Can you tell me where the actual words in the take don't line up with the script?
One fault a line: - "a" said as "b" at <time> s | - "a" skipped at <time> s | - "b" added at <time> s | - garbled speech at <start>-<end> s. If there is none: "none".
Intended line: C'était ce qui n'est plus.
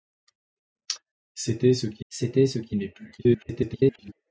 - "c'était ce qui" added at 2.1 s
- garbled speech at 3.2-4.1 s